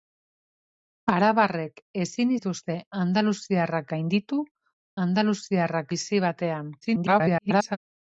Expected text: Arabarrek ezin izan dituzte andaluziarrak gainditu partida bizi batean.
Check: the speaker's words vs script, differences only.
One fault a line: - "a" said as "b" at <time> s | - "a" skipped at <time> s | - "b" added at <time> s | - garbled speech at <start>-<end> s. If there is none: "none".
- "izan" skipped at 2.3 s
- "partida" said as "andaluziarrak" at 5.1 s
- garbled speech at 6.8-7.8 s